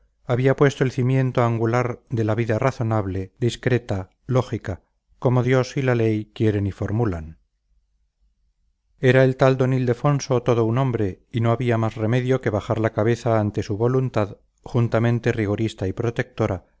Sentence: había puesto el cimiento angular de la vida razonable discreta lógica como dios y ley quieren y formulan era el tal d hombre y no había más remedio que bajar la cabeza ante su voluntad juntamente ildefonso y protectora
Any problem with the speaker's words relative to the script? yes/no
yes